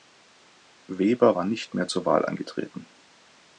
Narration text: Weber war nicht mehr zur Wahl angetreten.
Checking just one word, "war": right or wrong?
right